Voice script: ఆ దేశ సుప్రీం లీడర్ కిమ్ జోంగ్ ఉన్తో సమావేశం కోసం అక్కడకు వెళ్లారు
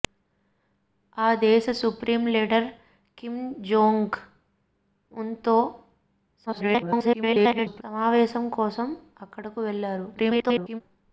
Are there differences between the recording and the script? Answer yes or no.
yes